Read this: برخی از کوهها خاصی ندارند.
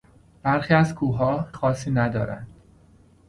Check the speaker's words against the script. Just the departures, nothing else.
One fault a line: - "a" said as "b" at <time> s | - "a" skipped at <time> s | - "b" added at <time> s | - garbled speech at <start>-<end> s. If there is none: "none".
none